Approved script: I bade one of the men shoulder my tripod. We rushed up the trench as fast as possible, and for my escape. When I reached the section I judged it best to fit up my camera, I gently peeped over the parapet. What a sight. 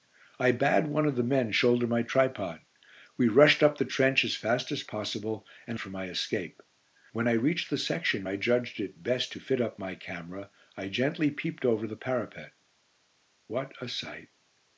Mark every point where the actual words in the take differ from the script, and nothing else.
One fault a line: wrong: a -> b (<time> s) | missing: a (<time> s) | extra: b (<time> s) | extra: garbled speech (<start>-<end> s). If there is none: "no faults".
no faults